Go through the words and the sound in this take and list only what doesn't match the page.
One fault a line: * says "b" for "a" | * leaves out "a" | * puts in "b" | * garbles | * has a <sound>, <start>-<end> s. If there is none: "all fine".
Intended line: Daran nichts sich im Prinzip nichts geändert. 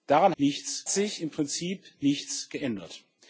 all fine